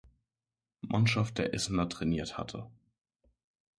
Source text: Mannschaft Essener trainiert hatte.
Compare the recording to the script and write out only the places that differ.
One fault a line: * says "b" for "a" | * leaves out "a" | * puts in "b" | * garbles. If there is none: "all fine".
* puts in "der"